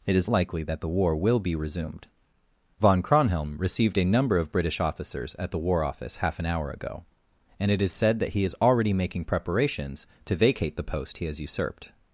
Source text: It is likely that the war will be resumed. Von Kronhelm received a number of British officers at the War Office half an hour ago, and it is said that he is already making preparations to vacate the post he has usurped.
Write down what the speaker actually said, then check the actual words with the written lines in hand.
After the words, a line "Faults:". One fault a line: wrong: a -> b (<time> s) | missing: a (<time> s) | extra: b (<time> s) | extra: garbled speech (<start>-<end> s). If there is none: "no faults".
It is likely that the war will be resumed. Von Kronhelm received a number of British officers at the War Office half an hour ago, and it is said that he is already making preparations to vacate the post he has usurped.
Faults:
no faults